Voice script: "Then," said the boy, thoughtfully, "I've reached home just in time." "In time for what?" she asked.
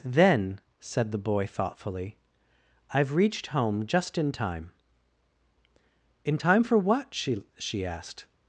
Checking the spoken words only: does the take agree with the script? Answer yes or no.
no